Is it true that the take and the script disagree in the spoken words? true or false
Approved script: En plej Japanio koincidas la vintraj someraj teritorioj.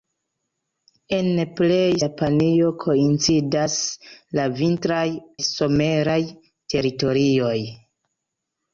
false